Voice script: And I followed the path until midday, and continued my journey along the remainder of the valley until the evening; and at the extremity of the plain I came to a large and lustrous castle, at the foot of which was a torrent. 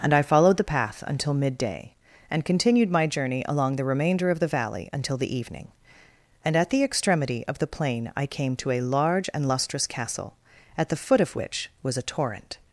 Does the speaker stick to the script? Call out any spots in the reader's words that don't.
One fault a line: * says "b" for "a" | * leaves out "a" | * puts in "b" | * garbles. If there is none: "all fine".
all fine